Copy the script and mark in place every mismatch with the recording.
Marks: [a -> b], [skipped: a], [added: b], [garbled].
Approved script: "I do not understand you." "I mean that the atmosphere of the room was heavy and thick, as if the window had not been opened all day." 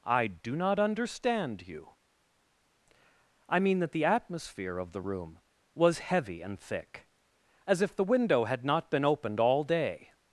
"I do not understand you." "I mean that the atmosphere of the room was heavy and thick, as if the window had not been opened all day."